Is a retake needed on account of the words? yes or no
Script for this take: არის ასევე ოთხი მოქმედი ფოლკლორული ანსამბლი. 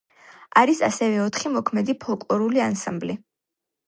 no